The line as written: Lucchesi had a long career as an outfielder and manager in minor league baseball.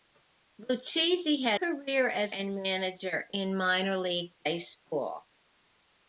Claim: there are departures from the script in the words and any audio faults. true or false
true